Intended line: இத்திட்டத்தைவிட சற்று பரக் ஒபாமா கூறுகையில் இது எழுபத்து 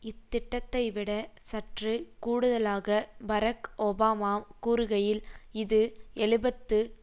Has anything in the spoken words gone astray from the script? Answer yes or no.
yes